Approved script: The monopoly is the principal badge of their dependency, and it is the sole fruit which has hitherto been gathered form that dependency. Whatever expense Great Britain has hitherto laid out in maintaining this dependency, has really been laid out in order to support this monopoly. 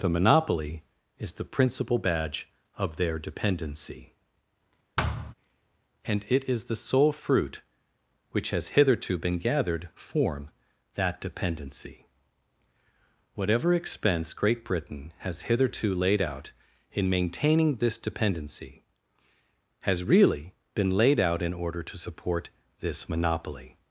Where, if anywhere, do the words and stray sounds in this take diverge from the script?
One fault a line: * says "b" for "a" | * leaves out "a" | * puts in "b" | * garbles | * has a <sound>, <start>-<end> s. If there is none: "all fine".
* has a thud, 5.0-5.3 s